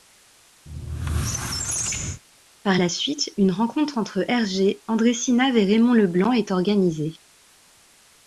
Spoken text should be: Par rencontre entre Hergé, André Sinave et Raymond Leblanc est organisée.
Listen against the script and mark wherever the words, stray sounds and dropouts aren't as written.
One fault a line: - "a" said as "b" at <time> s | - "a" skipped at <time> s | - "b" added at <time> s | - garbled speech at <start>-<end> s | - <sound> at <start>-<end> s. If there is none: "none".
- squeak at 0.7-2.2 s
- "la suite une" added at 2.8 s